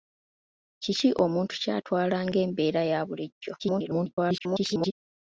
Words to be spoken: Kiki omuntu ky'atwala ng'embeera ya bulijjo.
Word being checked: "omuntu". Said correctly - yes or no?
yes